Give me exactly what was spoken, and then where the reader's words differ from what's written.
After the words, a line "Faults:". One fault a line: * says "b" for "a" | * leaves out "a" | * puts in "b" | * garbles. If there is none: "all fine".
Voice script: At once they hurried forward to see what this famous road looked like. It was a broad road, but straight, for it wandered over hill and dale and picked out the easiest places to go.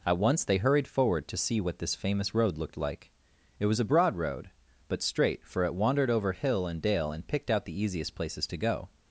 At once they hurried forward to see what this famous road looked like. It was a broad road, but straight, for it wandered over hill and dale and picked out the easiest places to go.
Faults:
all fine